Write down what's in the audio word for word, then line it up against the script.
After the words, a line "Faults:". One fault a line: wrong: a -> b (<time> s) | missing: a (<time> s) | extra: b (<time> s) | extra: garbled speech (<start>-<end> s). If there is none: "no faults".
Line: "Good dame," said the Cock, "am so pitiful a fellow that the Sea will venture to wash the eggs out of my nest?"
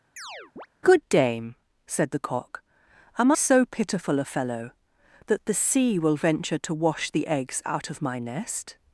"Good dame," said the Cock, "am so pitiful a fellow that the Sea will venture to wash the eggs out of my nest?"
Faults:
no faults